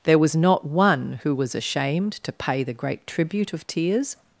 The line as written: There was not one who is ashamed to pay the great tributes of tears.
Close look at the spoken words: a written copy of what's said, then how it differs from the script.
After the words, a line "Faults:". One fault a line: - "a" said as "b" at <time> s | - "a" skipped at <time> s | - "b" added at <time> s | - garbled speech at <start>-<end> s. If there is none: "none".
There was not one who was ashamed to pay the great tribute of tears.
Faults:
- "is" said as "was" at 1.4 s
- "tributes" said as "tribute" at 3.0 s